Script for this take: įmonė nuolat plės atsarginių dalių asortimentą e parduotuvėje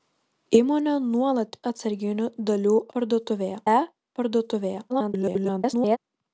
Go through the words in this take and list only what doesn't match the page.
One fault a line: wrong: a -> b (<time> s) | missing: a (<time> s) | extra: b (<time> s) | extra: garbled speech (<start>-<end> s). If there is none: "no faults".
missing: plės (1.6 s)
wrong: asortimentą -> parduotuvėje (3.0 s)
extra: garbled speech (4.9-6.0 s)